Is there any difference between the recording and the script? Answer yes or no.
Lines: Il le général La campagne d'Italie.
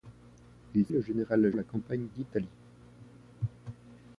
no